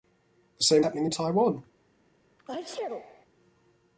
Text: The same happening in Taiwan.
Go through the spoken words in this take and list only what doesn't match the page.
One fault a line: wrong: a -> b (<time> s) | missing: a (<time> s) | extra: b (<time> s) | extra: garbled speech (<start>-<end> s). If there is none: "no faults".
no faults